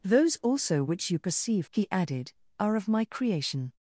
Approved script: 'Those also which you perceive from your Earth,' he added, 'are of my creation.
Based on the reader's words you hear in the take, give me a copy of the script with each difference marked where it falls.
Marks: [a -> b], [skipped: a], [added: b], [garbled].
'Those also which you perceive [skipped: from your Earth,'] he added, 'are of my creation.